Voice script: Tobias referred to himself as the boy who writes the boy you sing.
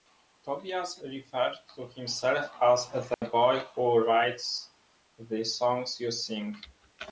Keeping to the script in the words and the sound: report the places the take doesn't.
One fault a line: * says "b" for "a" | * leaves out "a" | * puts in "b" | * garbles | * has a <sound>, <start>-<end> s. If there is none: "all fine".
* has a dropout, 3.1-3.2 s
* says "songs" for "boy"